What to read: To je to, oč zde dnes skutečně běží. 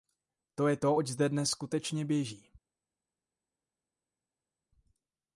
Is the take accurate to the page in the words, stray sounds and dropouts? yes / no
yes